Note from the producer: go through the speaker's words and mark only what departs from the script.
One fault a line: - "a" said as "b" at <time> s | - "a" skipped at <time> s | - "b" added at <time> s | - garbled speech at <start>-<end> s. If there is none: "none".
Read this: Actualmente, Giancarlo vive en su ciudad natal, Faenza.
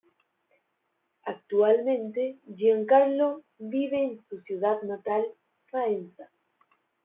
none